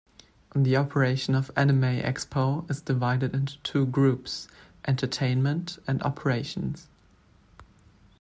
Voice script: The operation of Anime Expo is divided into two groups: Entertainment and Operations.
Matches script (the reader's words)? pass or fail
pass